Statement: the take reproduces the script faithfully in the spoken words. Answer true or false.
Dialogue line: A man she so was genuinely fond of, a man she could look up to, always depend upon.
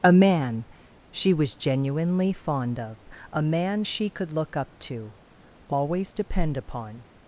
false